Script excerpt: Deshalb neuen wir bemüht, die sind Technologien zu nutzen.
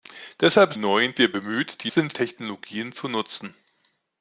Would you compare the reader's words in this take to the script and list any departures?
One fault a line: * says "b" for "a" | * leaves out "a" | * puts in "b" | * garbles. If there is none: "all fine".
all fine